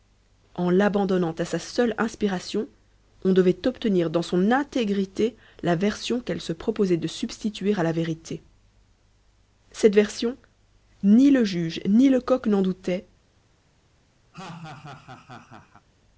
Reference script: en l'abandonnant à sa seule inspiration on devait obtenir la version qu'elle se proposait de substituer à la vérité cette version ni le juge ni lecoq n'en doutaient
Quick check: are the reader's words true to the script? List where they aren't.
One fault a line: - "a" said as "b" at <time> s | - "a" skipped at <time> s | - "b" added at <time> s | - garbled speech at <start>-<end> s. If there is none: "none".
- "dans son intégrité" added at 4.1 s